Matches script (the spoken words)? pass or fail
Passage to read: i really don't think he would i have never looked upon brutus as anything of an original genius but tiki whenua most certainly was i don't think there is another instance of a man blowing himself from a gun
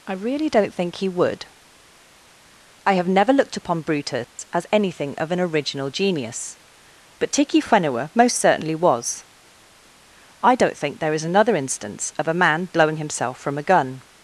pass